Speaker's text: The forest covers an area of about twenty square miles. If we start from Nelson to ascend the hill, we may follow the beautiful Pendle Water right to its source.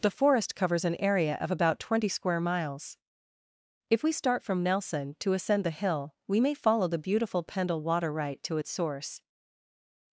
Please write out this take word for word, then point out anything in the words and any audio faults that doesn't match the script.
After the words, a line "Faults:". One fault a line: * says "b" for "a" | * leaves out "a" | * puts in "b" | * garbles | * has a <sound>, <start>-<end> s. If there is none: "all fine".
The forest covers an area of about twenty square miles. If we start from Nelson to ascend the hill, we may follow the beautiful Pendle Water right to its source.
Faults:
all fine